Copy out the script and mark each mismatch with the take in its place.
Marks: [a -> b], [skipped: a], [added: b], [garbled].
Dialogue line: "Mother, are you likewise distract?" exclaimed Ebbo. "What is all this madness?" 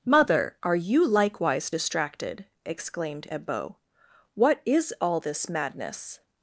"Mother, are you likewise [distract?" -> distracted] exclaimed Ebbo. "What is all this madness?"